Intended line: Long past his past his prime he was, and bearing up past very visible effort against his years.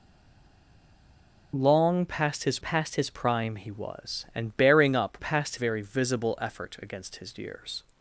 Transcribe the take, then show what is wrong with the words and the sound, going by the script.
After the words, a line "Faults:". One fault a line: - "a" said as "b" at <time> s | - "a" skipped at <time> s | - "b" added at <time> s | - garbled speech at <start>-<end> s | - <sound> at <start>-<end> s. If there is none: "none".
Long past his past his prime he was, and bearing up past very visible effort against his years.
Faults:
none